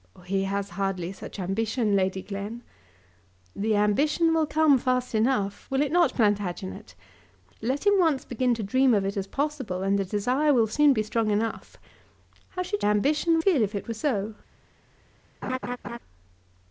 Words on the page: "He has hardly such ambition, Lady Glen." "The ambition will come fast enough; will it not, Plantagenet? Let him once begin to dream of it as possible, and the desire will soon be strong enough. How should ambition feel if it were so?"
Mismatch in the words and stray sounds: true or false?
true